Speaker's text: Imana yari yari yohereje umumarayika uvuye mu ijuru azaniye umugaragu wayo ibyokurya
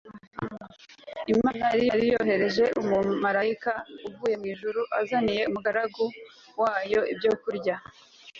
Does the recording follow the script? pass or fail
pass